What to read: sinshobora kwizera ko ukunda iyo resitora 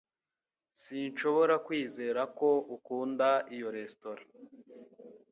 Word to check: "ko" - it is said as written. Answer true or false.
true